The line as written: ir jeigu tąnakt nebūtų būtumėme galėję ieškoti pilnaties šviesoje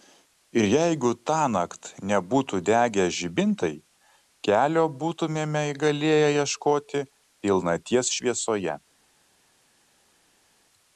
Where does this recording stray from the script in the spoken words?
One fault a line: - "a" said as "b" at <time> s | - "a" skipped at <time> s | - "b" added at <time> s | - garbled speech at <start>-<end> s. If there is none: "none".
- "degę žibintai kelio" added at 2.7 s